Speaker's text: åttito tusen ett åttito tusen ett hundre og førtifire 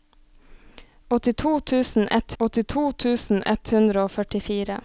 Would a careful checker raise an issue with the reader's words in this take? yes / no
no